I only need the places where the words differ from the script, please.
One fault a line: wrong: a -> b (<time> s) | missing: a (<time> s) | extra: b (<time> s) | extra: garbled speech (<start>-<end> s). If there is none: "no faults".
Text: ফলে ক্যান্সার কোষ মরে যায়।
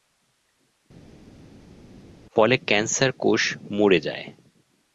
no faults